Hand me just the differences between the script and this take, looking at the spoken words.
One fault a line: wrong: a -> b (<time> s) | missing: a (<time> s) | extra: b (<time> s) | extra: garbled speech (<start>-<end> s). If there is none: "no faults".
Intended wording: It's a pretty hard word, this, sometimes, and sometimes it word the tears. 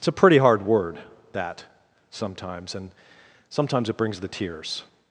wrong: this -> that (1.3 s)
wrong: word -> brings (4.0 s)